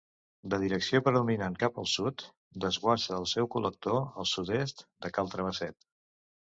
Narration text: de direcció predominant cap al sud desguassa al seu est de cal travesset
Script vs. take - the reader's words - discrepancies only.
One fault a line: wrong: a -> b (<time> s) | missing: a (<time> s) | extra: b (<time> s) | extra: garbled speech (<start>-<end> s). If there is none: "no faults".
extra: col·lector al sud (3.6 s)